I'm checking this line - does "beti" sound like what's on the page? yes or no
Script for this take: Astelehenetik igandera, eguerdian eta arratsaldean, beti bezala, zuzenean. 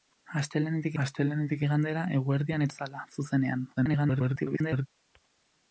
no